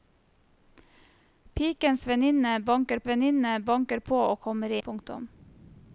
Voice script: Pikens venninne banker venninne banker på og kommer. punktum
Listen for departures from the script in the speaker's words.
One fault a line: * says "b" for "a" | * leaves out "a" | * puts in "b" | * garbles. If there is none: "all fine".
all fine